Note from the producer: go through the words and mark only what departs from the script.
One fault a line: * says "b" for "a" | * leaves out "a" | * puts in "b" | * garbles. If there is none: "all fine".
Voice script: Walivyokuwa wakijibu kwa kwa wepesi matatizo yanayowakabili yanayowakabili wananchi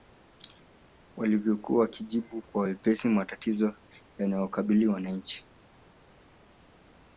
* leaves out "kwa"
* leaves out "yanayowakabili"